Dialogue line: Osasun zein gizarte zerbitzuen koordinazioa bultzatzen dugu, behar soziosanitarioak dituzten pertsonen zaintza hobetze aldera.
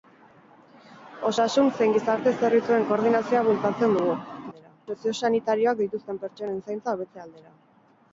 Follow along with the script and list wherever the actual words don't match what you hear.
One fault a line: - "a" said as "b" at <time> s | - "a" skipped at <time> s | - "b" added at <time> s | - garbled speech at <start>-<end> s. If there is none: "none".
- "behar" said as "aldera" at 4.5 s